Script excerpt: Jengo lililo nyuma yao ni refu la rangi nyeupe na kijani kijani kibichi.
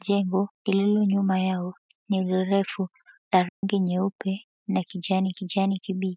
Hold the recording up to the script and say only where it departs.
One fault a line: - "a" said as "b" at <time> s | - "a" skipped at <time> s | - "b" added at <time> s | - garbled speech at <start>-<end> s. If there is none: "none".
none